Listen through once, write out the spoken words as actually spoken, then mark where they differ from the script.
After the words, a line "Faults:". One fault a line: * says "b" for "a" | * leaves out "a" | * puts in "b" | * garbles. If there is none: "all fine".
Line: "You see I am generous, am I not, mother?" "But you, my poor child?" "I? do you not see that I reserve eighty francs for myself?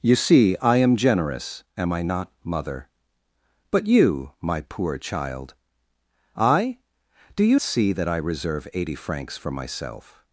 "You see I am generous, am I not, mother?" "But you, my poor child?" "I? do you see that I reserve eighty francs for myself?
Faults:
* leaves out "not"